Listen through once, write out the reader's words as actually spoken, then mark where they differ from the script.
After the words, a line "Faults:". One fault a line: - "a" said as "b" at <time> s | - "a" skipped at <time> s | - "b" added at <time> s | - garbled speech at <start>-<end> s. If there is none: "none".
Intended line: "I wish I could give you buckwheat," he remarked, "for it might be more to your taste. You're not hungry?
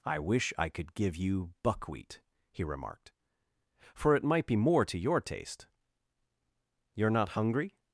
"I wish I could give you buckwheat," he remarked, "for it might be more to your taste. You're not hungry?
Faults:
none